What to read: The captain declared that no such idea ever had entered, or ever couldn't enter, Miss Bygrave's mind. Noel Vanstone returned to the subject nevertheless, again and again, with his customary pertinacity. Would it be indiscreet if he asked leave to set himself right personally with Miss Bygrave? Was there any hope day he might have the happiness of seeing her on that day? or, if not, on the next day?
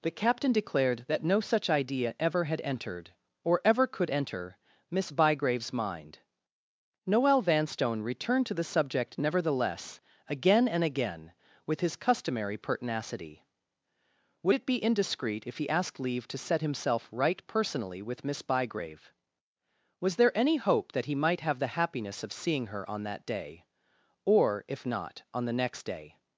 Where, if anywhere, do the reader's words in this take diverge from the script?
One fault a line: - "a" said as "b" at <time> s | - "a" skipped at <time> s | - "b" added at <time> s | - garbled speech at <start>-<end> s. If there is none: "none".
- "couldn't" said as "could" at 3.9 s
- "day" said as "that" at 20.9 s